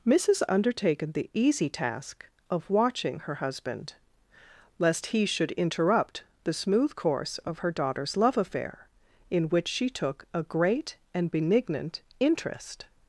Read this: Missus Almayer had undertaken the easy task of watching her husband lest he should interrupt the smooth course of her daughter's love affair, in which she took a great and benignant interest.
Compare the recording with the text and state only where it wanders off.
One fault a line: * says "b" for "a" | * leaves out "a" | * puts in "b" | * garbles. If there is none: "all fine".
* leaves out "Almayer had"